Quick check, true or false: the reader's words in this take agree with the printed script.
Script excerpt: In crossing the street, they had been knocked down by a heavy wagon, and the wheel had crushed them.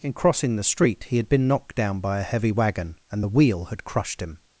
false